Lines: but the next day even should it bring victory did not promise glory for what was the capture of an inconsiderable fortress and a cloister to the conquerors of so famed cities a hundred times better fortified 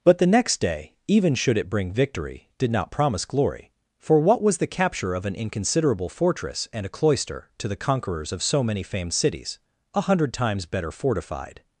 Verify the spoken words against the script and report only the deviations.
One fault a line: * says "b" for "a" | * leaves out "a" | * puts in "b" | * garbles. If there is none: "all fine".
* puts in "many"